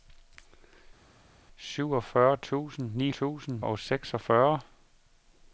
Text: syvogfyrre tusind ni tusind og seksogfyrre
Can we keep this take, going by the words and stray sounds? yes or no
yes